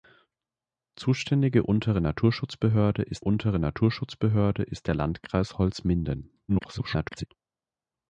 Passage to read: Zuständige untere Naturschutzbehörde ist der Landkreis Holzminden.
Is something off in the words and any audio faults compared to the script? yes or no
yes